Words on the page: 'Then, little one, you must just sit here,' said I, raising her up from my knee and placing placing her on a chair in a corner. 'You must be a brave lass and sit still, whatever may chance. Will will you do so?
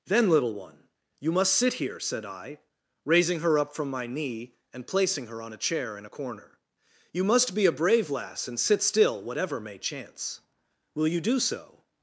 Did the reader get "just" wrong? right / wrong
wrong